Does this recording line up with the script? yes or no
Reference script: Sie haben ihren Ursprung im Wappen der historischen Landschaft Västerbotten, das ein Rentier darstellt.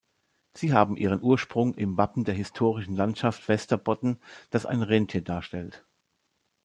yes